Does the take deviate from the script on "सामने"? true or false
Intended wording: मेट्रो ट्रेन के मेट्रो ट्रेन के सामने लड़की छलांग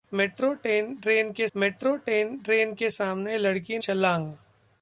false